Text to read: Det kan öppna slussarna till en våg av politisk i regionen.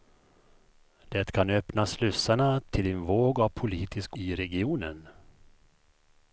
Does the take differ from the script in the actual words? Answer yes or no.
no